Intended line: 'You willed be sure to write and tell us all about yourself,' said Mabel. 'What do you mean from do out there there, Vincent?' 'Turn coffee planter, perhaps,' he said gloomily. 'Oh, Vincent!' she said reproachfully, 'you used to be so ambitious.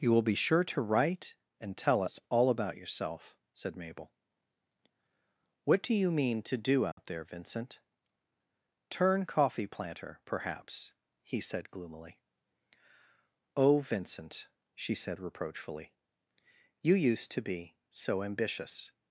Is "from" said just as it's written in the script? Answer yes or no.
no